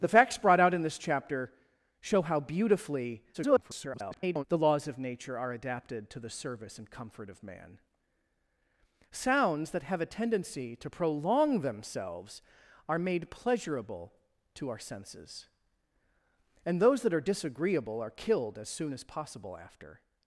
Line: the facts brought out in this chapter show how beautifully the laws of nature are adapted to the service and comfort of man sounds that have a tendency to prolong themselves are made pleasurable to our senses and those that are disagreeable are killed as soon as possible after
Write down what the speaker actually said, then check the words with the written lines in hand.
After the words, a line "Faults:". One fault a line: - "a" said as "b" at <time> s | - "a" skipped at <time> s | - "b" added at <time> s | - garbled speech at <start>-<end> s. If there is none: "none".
the facts brought out in this chapter show how beautifully [garbled] the laws of nature are adapted to the service and comfort of man sounds that have a tendency to prolong themselves are made pleasurable to our senses and those that are disagreeable are killed as soon as possible after
Faults:
- garbled speech at 3.3-4.4 s